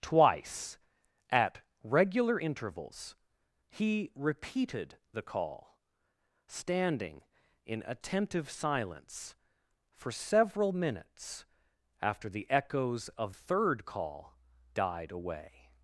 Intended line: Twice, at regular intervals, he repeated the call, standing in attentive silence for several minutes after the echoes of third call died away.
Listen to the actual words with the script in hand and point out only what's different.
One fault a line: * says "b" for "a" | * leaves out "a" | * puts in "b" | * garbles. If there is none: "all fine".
all fine